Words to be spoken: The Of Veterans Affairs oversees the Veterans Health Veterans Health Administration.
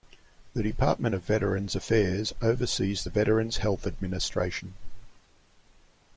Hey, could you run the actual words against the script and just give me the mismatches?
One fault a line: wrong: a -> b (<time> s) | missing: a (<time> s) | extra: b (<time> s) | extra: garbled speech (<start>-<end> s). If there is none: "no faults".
extra: Department (0.6 s)
missing: Veterans Health (3.9 s)